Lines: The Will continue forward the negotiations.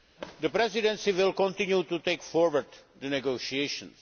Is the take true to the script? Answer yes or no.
no